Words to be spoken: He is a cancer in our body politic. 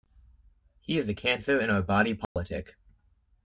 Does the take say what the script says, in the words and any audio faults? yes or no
no